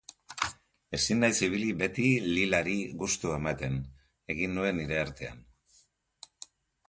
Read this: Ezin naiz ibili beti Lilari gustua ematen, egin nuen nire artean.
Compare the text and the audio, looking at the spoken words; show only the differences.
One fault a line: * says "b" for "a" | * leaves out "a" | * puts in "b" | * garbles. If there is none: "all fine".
all fine